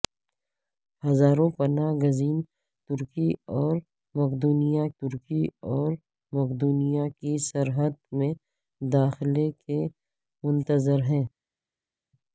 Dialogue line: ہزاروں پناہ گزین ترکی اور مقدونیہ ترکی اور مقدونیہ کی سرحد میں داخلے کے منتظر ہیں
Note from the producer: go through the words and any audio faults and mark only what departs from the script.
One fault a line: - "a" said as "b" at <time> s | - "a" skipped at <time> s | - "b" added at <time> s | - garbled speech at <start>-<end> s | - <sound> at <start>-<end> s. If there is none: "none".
none